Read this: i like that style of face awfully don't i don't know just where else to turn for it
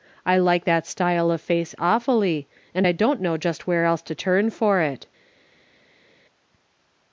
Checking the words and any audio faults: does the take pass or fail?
fail